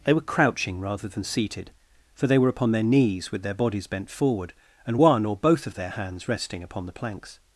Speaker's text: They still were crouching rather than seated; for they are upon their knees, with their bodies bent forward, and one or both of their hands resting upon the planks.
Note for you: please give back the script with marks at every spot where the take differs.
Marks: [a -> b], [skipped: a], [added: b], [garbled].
They [skipped: still] were crouching rather than seated; for they [are -> were] upon their knees, with their bodies bent forward, and one or both of their hands resting upon the planks.